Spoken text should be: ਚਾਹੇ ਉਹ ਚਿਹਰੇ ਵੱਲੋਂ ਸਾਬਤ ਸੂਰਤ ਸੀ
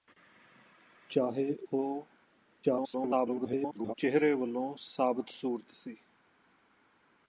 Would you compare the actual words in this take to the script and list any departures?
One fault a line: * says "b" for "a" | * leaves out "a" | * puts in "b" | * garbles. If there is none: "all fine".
* garbles